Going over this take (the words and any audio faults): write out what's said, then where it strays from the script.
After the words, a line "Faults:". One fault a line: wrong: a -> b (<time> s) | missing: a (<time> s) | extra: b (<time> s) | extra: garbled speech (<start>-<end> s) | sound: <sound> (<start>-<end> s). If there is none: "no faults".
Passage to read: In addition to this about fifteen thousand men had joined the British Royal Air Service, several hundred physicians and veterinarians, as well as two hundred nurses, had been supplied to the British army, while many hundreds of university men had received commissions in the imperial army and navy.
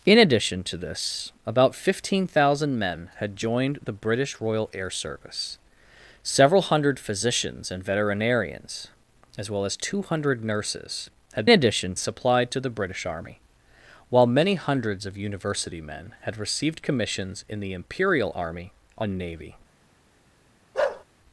In addition to this about fifteen thousand men had joined the British Royal Air Service, several hundred physicians and veterinarians, as well as two hundred nurses, had addition supplied to the British army, while many hundreds of university men had received commissions in the imperial army and navy.
Faults:
wrong: been -> addition (11.5 s)
sound: bark (20.7-21.0 s)